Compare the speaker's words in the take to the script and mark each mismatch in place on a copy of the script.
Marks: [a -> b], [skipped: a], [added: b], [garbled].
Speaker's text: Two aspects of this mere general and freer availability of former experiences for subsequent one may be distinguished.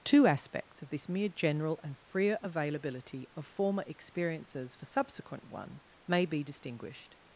Two aspects of this mere general and freer availability of former experiences for subsequent one may be distinguished.